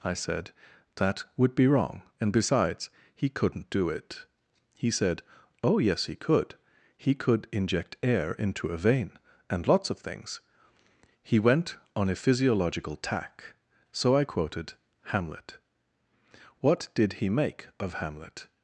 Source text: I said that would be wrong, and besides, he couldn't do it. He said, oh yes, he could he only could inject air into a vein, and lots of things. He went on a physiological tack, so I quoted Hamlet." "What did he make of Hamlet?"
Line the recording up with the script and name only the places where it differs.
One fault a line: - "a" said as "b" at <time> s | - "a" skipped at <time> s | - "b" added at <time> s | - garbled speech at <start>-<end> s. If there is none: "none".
- "only" skipped at 7.2 s